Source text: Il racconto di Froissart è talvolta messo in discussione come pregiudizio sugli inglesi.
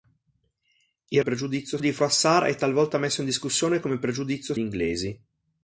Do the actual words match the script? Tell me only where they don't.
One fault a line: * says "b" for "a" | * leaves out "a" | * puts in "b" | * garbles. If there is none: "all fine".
* says "pregiudizio" for "racconto"
* leaves out "sugli"